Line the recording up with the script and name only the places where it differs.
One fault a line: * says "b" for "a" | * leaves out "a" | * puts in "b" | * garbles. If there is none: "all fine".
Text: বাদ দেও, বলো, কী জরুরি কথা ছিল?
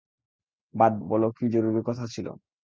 * leaves out "দেও"